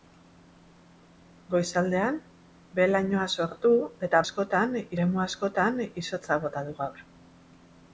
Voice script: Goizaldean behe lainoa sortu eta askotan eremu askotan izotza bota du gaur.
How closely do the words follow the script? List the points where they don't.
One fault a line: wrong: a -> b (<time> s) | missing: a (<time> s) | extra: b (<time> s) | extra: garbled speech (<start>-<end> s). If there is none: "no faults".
no faults